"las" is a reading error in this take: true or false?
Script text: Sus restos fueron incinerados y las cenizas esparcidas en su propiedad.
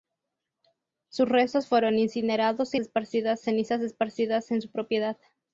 true